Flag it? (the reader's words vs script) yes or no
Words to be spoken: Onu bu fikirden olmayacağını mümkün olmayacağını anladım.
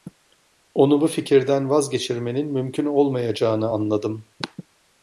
yes